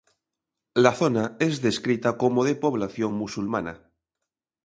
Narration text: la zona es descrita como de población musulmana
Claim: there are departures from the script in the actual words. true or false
false